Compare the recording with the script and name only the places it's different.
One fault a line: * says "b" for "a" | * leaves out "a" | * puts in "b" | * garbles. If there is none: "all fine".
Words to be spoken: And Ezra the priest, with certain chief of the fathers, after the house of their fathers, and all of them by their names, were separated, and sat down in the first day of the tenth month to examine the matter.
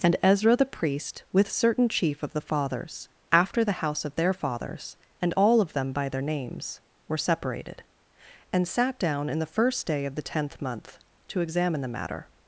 all fine